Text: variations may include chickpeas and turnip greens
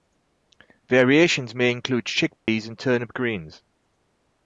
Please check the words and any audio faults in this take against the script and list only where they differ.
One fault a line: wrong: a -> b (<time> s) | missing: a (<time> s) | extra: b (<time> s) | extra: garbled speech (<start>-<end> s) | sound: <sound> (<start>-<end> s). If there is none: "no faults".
sound: dropout (2.4-2.5 s)